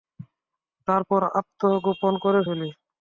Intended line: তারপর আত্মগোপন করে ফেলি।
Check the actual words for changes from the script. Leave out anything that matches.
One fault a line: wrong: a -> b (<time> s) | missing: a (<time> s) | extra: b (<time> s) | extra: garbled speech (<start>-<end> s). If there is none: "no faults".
no faults